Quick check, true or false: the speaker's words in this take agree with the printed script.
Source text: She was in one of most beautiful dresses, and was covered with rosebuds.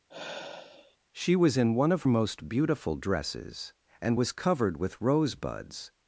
true